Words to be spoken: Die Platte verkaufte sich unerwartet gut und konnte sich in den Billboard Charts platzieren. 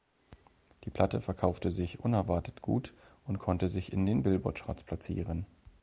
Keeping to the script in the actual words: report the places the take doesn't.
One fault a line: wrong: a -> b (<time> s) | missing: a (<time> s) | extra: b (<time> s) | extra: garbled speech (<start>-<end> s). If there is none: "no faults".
no faults